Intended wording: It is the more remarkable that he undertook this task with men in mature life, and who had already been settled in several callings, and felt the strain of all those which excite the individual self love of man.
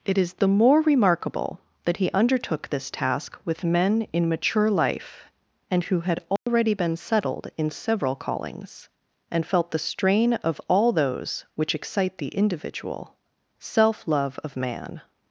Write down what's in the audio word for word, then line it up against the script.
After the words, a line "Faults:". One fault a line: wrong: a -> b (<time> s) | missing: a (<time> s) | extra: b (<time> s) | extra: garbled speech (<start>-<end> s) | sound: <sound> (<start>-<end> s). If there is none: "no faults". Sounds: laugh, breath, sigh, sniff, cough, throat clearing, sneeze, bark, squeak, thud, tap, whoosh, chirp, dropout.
It is the more remarkable that he undertook this task with men in mature life, and who had already been settled in several callings, and felt the strain of all those which excite the individual self love of man.
Faults:
sound: dropout (6.4-6.5 s)